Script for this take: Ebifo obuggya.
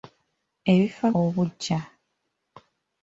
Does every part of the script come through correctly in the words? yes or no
yes